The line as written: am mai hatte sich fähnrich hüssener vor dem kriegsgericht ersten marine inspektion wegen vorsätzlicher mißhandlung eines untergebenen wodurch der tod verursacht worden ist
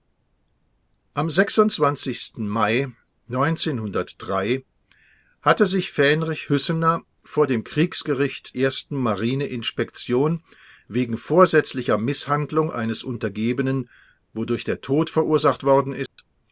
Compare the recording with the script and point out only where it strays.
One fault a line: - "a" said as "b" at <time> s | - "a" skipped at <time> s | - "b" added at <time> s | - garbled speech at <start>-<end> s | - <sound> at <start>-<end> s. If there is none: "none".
- dropout at 16.1-16.2 s